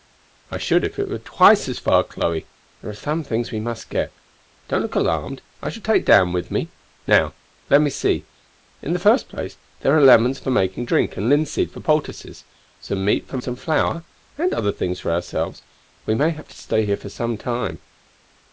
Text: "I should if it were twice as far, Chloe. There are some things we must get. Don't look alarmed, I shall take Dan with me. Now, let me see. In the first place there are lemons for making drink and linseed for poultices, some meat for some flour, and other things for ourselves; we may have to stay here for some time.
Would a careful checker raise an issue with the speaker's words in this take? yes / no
no